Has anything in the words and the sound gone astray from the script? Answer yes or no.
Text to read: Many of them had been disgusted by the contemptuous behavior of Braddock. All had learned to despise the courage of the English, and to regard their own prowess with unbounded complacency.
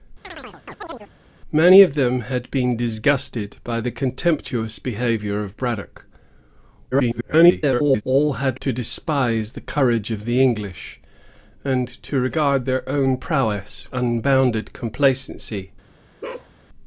yes